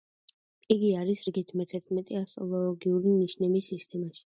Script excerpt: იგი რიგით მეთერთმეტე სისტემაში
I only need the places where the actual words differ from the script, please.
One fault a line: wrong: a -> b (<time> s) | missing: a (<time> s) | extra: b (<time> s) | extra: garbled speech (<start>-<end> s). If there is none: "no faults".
extra: არის (1.0 s)
extra: ასტროლოგიური ნიშნების (2.2 s)